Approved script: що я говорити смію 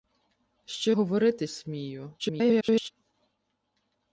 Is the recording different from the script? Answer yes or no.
yes